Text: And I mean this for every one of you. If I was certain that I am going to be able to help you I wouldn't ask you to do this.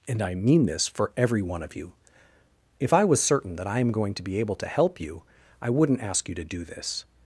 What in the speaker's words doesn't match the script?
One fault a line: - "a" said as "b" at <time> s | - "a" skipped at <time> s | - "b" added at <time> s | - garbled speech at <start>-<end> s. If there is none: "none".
none